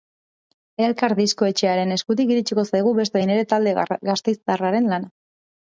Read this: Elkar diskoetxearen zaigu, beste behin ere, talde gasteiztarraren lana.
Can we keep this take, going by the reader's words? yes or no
no